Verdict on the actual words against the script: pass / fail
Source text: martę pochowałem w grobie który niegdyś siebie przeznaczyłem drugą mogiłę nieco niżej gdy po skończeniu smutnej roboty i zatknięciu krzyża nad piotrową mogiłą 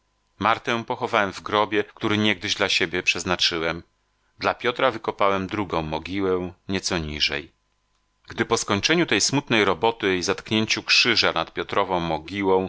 fail